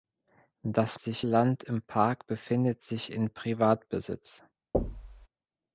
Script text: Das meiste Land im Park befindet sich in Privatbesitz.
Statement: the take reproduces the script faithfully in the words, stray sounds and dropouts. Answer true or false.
false